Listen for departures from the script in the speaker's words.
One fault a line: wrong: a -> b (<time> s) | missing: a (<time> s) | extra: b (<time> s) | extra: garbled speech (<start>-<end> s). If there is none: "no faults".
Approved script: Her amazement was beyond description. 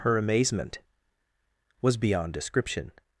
no faults